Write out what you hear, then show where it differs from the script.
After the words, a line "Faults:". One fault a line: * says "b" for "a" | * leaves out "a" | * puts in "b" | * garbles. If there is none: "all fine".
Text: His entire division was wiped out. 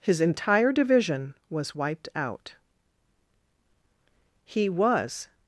His entire division was wiped out. He was
Faults:
* puts in "He was"